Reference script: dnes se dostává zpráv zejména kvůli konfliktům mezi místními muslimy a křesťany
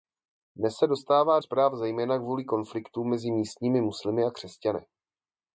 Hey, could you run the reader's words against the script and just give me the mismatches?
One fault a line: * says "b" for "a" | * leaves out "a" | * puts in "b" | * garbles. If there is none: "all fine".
all fine